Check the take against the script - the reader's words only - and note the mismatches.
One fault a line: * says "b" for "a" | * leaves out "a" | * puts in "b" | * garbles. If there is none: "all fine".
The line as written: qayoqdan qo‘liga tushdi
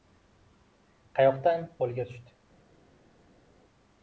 all fine